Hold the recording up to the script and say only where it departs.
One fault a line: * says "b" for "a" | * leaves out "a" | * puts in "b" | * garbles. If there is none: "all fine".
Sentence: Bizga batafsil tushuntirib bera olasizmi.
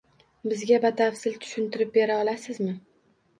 all fine